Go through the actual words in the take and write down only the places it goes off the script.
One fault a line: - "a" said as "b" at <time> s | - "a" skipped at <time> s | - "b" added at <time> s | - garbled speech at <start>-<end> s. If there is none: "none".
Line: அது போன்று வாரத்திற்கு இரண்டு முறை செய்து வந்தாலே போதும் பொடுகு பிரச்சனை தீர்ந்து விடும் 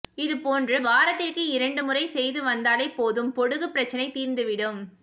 - "அது" said as "இது" at 0.1 s